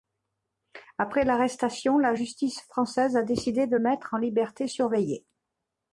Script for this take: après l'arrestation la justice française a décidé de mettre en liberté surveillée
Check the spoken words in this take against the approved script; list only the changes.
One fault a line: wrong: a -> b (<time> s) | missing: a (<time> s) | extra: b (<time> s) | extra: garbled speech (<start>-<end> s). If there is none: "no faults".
no faults